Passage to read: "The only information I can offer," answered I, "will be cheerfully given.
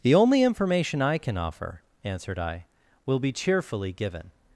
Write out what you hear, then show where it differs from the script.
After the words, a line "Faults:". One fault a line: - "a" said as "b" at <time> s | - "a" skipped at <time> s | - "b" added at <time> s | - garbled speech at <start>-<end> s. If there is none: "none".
"The only information I can offer," answered I, "will be cheerfully given.
Faults:
none